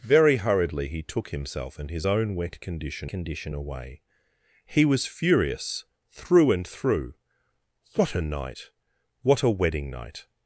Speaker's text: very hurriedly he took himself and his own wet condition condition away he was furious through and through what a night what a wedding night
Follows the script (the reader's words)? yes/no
yes